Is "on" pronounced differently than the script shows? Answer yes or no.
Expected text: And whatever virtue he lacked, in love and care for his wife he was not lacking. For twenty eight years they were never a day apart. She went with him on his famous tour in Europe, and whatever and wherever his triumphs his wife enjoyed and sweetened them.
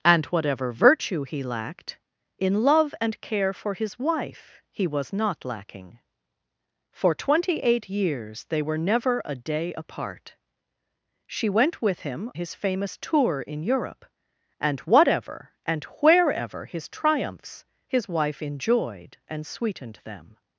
yes